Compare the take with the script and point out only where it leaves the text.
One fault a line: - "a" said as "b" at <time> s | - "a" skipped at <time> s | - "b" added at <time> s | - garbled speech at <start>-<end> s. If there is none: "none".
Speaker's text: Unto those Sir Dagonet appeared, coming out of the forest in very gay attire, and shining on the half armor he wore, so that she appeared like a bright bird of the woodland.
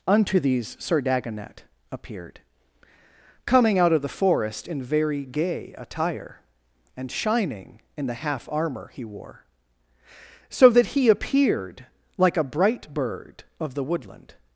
- "those" said as "these" at 0.4 s
- "on" said as "in" at 8.0 s
- "she" said as "he" at 10.9 s